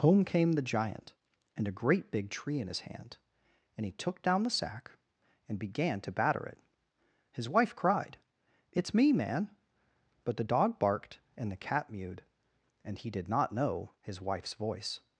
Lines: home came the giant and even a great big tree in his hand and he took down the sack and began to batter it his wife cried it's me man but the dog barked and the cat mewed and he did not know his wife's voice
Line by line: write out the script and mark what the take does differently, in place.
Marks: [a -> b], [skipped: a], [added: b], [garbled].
home came the giant and [skipped: even] a great big tree in his hand and he took down the sack and began to batter it his wife cried it's me man but the dog barked and the cat mewed and he did not know his wife's voice